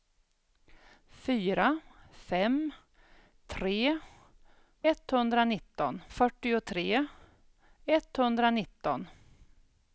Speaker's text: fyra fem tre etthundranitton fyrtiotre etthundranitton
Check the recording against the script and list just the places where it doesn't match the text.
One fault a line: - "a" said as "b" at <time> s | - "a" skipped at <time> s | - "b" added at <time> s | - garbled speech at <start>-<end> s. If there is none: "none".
none